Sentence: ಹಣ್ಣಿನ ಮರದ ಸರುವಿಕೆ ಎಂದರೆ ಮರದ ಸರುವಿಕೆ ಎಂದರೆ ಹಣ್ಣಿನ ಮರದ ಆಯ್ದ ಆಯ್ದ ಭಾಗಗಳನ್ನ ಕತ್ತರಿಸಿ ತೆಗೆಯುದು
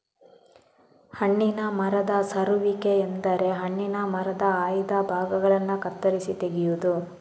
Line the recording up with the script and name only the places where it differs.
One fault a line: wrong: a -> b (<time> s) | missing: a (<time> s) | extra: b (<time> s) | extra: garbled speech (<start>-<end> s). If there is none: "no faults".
missing: ಮರದ ಸರುವಿಕೆ ಎಂದರೆ (3.5 s)
missing: ಆಯ್ದ (4.9 s)